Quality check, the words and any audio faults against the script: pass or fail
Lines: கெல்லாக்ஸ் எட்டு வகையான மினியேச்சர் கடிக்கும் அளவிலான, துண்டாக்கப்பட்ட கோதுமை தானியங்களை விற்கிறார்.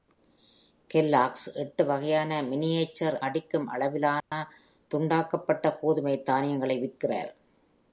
fail